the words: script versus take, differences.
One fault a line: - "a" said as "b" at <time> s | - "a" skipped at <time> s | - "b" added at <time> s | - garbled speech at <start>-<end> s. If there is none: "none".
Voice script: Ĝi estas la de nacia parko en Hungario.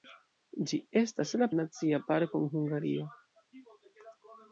none